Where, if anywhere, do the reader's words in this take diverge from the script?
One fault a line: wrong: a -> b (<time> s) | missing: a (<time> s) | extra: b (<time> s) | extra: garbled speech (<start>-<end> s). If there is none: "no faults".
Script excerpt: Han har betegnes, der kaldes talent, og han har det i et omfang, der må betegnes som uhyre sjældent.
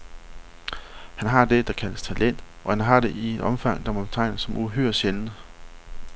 wrong: betegnes -> det (1.4 s)